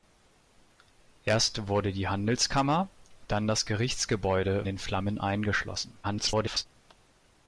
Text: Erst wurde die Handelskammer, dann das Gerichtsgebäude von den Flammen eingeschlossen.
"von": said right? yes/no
no